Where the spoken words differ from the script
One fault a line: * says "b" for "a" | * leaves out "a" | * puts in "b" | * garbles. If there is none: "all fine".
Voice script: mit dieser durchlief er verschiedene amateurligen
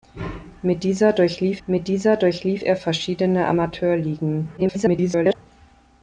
* puts in "mit dieser durchlief"
* garbles